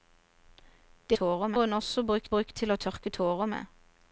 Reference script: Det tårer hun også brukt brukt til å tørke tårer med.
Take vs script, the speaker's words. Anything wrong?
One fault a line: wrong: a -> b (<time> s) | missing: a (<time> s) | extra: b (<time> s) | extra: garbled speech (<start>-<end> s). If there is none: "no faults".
no faults